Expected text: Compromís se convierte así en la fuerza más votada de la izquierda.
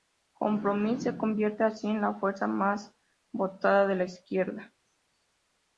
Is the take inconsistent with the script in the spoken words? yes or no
no